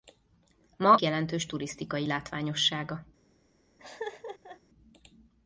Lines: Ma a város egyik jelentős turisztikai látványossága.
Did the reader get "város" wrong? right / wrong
wrong